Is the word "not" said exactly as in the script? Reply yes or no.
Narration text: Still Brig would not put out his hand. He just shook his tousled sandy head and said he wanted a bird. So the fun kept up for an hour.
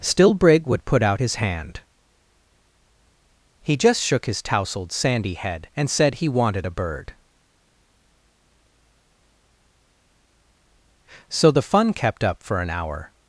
no